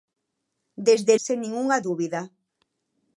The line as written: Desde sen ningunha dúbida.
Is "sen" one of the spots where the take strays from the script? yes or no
no